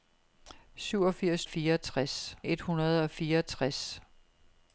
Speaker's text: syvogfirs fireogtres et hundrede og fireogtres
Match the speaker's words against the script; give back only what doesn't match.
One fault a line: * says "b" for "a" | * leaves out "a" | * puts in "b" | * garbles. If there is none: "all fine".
all fine